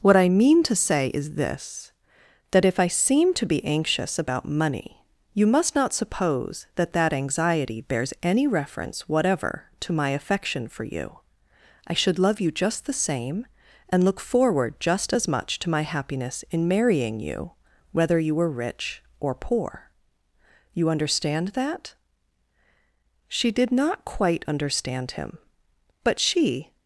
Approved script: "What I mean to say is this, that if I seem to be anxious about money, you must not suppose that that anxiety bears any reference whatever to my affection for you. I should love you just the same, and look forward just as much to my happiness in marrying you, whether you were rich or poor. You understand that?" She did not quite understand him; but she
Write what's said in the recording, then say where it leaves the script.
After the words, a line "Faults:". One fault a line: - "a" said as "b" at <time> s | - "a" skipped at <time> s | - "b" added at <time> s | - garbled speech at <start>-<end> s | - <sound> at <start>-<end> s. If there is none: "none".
"What I mean to say is this, that if I seem to be anxious about money, you must not suppose that that anxiety bears any reference whatever to my affection for you. I should love you just the same, and look forward just as much to my happiness in marrying you, whether you were rich or poor. You understand that?" She did not quite understand him; but she
Faults:
none